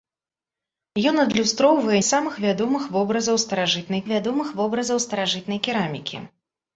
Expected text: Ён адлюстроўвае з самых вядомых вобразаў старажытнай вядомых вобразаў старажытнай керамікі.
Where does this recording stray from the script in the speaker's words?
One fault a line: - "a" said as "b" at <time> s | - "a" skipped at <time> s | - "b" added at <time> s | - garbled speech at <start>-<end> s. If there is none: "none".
none